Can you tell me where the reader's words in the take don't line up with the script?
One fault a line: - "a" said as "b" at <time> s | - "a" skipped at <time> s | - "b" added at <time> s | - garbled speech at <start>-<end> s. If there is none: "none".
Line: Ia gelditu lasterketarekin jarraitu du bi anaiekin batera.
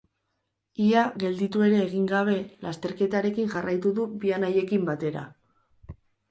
- "ere egin gabe" added at 1.7 s